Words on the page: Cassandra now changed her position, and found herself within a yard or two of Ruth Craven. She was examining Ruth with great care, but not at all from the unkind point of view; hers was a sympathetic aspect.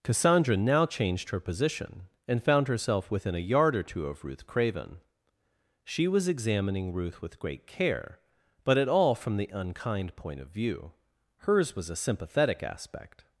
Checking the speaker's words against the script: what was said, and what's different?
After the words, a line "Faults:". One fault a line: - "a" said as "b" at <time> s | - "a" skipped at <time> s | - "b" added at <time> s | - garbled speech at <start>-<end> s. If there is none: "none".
Cassandra now changed her position, and found herself within a yard or two of Ruth Craven. She was examining Ruth with great care, but at all from the unkind point of view; hers was a sympathetic aspect.
Faults:
- "not" skipped at 8.8 s